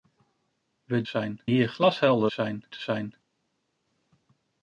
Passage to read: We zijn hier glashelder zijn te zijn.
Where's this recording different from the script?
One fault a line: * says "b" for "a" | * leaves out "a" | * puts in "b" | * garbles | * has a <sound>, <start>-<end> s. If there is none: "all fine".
all fine